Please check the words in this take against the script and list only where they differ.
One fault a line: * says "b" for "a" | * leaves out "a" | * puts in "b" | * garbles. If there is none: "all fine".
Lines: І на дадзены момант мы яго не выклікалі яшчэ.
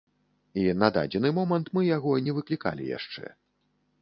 all fine